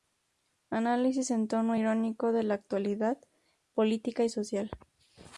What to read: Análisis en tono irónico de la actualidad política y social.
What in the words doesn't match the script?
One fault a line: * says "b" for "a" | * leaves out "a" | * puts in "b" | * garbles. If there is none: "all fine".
all fine